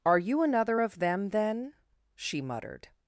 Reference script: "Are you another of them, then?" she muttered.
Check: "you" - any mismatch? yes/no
no